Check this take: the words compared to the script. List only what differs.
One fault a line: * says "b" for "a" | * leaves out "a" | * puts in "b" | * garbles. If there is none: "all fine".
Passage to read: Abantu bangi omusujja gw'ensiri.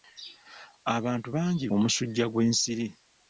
all fine